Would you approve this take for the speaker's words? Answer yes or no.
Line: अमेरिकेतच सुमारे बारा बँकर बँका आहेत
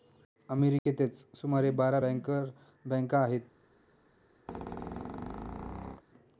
yes